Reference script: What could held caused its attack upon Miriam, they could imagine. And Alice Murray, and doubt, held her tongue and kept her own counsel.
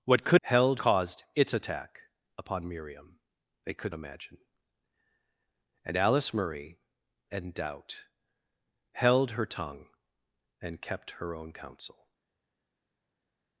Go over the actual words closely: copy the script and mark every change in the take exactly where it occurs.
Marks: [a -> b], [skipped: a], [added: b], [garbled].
What could held caused its attack upon Miriam, they could imagine. And Alice Murray, and doubt, held her tongue and kept her own counsel.